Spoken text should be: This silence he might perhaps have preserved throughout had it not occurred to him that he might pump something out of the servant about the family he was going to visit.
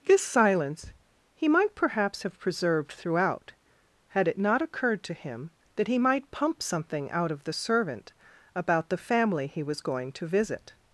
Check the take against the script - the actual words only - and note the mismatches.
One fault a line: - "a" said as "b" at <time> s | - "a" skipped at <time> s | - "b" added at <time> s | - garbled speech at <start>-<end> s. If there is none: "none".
none